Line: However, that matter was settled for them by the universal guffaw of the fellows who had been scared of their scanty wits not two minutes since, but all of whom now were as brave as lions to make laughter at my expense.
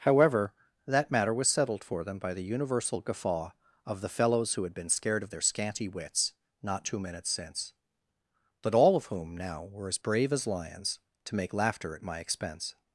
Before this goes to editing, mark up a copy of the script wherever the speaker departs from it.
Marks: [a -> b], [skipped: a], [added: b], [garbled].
However, that matter was settled for them by the universal guffaw of the fellows who had been scared of their scanty wits not two minutes since, but all of whom now were as brave as lions to make laughter at my expense.